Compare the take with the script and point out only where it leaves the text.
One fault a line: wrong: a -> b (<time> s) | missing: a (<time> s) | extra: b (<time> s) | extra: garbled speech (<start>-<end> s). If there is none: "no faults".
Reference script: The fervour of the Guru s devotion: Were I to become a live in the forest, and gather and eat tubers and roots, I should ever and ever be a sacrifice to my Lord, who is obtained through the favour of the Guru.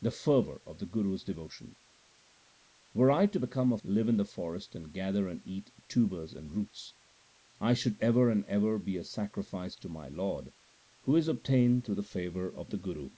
no faults